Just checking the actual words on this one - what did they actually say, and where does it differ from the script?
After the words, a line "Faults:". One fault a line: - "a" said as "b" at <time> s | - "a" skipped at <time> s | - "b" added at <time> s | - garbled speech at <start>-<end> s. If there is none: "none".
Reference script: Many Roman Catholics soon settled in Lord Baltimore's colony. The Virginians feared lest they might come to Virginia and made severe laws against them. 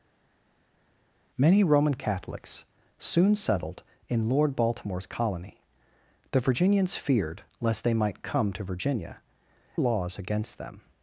Many Roman Catholics soon settled in Lord Baltimore's colony. The Virginians feared lest they might come to Virginia laws against them.
Faults:
- "and made severe" skipped at 9.2 s